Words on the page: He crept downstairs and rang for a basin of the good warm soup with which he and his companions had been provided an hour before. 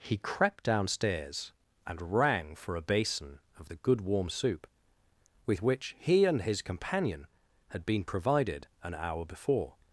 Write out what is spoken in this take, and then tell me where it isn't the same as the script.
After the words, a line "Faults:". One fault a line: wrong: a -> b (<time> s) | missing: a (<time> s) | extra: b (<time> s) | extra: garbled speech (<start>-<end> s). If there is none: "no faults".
He crept downstairs and rang for a basin of the good warm soup with which he and his companion had been provided an hour before.
Faults:
wrong: companions -> companion (6.6 s)